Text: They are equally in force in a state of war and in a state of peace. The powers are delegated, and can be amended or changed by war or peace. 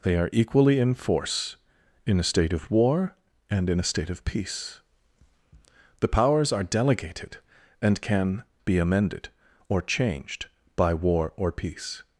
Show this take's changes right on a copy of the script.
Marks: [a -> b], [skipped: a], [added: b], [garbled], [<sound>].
They are equally in force in a state of war and in a state of peace. The powers are delegated, and can be amended or changed by war or peace.